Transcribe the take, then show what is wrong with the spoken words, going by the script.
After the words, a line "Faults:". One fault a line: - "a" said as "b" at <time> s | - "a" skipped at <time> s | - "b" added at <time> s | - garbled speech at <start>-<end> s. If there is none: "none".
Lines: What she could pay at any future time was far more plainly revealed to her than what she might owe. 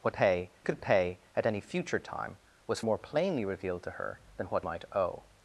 What pay could pay at any future time was more plainly revealed to her than what might owe.
Faults:
- "she" said as "pay" at 0.1 s
- "far" skipped at 2.8 s
- "she" skipped at 4.7 s